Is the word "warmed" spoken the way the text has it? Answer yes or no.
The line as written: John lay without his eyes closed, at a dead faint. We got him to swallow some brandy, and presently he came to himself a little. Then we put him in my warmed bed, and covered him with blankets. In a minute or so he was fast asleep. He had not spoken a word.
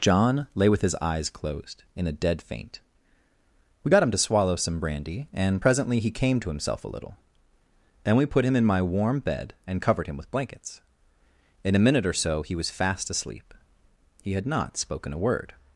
no